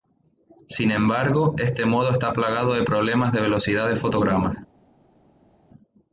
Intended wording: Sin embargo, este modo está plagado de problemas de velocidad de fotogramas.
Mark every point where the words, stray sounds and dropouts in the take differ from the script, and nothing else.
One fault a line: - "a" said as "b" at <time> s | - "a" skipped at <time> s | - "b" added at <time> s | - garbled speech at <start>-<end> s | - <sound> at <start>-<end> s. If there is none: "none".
none